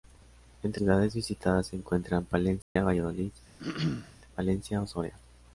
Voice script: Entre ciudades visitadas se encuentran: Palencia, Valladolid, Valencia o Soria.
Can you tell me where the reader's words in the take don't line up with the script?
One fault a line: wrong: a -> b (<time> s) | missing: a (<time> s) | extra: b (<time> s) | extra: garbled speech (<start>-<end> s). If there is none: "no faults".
no faults